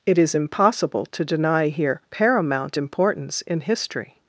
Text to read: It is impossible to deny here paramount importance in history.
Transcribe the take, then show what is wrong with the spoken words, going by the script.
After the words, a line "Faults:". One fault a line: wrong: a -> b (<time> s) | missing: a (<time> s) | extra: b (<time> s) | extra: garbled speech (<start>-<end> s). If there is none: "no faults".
It is impossible to deny here paramount importance in history.
Faults:
no faults